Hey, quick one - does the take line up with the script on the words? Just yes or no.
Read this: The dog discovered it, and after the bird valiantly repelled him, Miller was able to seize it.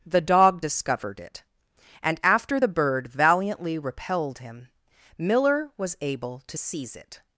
yes